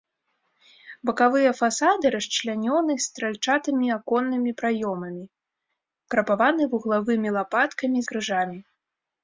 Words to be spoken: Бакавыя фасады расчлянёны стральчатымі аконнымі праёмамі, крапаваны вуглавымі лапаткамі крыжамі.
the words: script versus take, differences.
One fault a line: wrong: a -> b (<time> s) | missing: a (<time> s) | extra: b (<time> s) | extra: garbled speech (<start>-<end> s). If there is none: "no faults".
no faults